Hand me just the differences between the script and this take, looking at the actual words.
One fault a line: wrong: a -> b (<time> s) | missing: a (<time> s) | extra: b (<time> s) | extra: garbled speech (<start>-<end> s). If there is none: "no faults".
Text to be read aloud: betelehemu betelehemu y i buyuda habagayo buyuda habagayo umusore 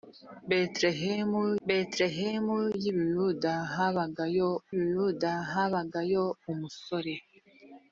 no faults